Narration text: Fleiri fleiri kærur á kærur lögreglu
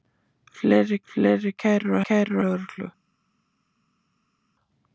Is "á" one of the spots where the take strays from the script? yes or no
no